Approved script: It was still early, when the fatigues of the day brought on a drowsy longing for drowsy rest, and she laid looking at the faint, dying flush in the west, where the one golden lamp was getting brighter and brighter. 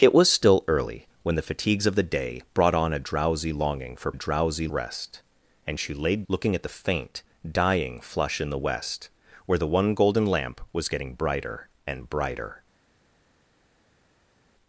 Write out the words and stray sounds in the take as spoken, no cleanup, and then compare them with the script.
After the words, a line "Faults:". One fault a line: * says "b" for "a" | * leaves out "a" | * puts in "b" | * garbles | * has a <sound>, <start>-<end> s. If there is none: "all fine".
It was still early, when the fatigues of the day brought on a drowsy longing for drowsy rest, and she laid looking at the faint, dying flush in the west, where the one golden lamp was getting brighter and brighter.
Faults:
all fine